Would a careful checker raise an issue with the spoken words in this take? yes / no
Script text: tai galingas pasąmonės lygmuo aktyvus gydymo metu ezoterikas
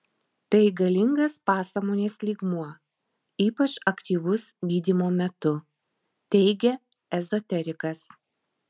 yes